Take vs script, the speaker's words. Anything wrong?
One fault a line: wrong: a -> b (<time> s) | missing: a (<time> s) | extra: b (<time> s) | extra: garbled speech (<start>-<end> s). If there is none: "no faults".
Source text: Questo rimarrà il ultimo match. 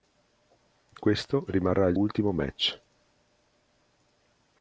no faults